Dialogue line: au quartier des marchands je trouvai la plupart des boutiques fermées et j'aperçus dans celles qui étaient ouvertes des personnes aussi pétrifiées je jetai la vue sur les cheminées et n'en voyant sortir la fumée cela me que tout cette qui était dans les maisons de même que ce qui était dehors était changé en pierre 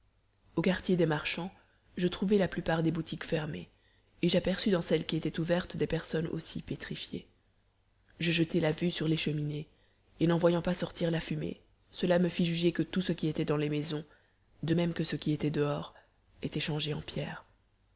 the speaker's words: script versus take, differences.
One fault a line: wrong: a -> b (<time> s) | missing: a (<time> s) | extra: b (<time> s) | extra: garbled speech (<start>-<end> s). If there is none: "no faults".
extra: pas (10.6 s)
extra: fit juger (12.3 s)
wrong: cette -> ce (13.0 s)